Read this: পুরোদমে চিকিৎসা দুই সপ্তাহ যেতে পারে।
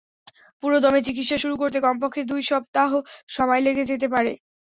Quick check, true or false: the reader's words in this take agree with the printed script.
false